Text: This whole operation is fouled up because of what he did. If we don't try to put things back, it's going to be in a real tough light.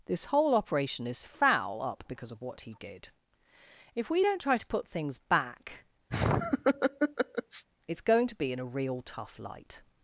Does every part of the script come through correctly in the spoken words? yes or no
no